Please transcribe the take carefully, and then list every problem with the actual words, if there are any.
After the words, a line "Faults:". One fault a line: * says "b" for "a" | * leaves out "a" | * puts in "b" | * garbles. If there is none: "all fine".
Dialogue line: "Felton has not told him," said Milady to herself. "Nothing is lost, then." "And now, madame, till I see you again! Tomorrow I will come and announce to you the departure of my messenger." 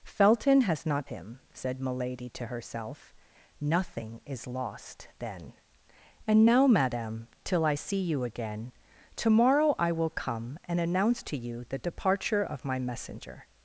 "Felton has not him," said Milady to herself. "Nothing is lost, then." "And now, madame, till I see you again! Tomorrow I will come and announce to you the departure of my messenger."
Faults:
* leaves out "told"